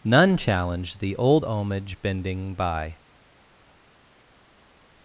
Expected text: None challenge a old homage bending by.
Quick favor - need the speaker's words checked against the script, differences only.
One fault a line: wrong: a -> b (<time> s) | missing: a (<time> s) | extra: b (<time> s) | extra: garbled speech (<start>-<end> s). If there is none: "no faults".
wrong: a -> the (1.0 s)